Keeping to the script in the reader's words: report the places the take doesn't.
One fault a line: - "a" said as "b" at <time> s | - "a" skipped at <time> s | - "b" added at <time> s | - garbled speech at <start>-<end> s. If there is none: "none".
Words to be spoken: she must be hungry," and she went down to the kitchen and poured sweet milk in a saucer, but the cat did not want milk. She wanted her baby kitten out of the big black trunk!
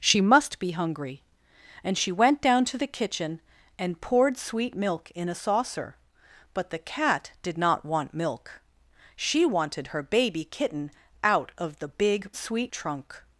- "black" said as "sweet" at 12.3 s